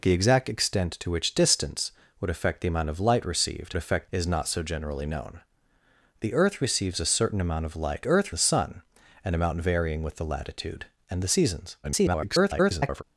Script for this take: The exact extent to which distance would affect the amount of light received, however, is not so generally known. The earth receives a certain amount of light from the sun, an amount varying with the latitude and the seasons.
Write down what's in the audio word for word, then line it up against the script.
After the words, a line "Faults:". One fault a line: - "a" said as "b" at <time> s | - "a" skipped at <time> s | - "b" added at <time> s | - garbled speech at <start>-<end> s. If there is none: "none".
The exact extent to which distance would affect the amount of light received, affect, is not so generally known. The earth receives a certain amount of light earth the sun, an amount varying with the latitude and the seasons. [garbled]
Faults:
- "however" said as "affect" at 3.8 s
- "from" said as "earth" at 8.1 s
- garbled speech at 11.8-13.0 s